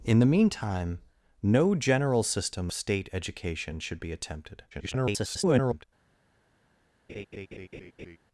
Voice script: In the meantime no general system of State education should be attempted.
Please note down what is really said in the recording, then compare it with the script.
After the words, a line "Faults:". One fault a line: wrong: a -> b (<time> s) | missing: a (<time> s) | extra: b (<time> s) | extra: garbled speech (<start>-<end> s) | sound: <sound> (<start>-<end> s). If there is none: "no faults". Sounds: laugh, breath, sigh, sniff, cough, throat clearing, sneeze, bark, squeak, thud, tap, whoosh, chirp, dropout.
In the meantime no general system State education should be attempted. [garbled]
Faults:
missing: of (2.7 s)
extra: garbled speech (4.7-5.8 s)
sound: laugh (7.1-8.2 s)